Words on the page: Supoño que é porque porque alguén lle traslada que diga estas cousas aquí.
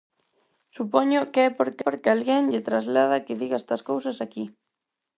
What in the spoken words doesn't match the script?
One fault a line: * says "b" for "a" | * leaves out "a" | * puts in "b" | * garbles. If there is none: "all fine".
all fine